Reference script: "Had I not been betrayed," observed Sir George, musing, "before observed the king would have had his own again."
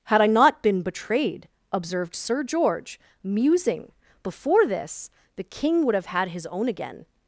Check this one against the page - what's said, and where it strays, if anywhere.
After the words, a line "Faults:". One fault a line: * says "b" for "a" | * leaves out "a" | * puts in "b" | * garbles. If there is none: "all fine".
"Had I not been betrayed," observed Sir George, musing, "before this the king would have had his own again."
Faults:
* says "this" for "observed"